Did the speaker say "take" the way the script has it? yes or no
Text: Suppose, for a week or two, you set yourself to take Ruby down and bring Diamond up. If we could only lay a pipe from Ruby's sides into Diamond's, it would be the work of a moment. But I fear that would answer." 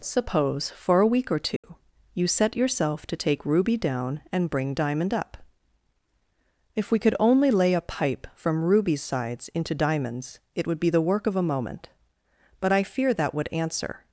yes